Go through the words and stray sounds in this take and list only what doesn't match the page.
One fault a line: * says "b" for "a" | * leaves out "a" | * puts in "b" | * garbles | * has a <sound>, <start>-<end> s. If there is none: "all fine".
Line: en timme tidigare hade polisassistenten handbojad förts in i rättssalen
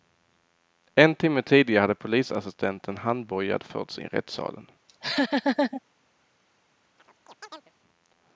* leaves out "in"
* has a laugh, 4.9-5.8 s
* has a chirp, 7.0-7.7 s